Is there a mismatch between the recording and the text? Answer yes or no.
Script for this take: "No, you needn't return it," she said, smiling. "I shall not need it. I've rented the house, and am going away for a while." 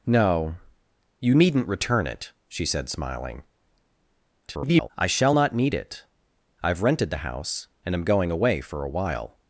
yes